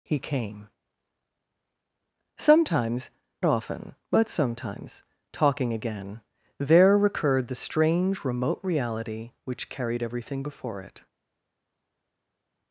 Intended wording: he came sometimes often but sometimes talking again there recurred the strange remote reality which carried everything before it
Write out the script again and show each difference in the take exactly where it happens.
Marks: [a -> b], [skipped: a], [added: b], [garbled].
he came sometimes often but sometimes talking again there recurred the strange remote reality which carried everything before it